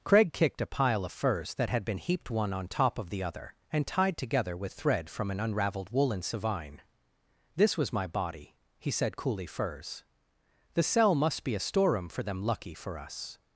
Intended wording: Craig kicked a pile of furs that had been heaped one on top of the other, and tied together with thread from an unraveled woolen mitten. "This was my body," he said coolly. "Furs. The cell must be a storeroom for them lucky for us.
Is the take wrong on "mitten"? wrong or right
wrong